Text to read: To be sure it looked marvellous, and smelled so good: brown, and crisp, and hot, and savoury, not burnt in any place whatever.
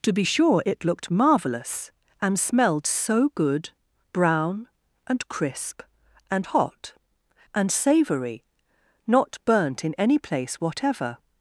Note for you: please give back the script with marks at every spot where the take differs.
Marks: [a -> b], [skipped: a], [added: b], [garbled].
To be sure it looked marvellous, and smelled so good: brown, and crisp, and hot, and savoury, not burnt in any place whatever.